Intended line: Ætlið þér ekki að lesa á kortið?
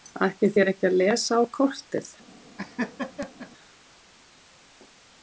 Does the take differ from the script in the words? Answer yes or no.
no